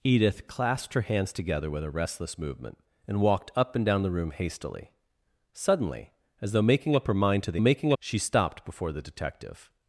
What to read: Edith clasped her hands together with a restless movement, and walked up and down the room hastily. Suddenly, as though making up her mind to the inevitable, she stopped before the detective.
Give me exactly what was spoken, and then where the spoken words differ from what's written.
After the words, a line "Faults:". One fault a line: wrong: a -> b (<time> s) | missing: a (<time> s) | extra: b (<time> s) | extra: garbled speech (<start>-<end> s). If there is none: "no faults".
Edith clasped her hands together with a restless movement, and walked up and down the room hastily. Suddenly, as though making up her mind to the making, she stopped before the detective.
Faults:
wrong: inevitable -> making (7.6 s)